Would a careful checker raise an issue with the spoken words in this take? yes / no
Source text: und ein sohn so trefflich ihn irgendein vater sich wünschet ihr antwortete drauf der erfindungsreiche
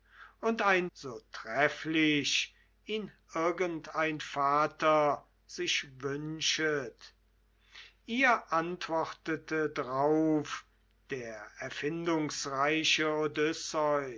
yes